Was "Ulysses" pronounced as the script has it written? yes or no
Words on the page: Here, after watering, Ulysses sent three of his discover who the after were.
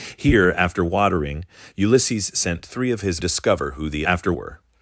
yes